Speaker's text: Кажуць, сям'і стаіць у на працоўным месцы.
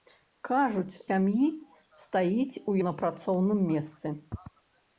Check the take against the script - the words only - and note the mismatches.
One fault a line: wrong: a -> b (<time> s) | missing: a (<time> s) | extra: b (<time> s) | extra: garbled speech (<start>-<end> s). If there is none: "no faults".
no faults